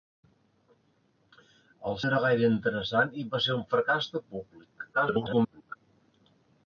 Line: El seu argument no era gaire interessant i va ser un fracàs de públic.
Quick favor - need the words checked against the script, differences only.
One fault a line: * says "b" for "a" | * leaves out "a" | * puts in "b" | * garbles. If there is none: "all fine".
* leaves out "seu argument"
* garbles